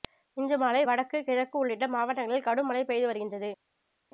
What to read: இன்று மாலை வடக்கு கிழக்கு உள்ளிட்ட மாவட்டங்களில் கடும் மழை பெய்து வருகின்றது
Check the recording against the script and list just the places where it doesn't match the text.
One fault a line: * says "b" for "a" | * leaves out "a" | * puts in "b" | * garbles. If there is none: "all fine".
all fine